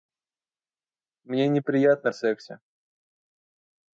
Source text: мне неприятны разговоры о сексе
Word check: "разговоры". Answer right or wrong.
wrong